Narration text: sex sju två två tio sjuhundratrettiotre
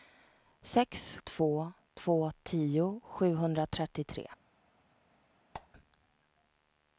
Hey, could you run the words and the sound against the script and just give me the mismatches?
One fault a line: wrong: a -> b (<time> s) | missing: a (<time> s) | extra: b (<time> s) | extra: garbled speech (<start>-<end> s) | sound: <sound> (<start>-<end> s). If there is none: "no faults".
missing: sju (1.2 s)
sound: squeak (5.5-5.7 s)